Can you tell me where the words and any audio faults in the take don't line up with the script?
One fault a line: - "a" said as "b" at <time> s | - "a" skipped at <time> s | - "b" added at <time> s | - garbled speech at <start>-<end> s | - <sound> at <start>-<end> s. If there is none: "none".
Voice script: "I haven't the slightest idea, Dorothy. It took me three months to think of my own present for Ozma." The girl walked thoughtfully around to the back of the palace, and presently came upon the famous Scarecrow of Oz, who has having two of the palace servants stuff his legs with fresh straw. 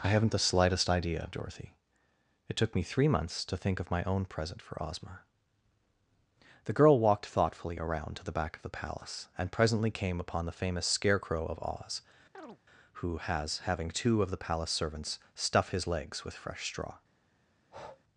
- chirp at 12.3-12.6 s
- breath at 17.6-18.0 s